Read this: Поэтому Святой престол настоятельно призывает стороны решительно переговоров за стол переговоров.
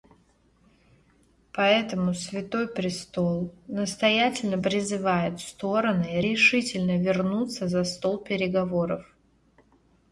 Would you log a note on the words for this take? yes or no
yes